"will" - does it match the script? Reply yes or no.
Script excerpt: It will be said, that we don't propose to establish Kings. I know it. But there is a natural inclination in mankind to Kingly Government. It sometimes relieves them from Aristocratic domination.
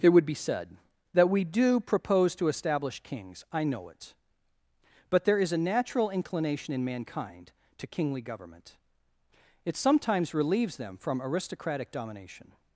no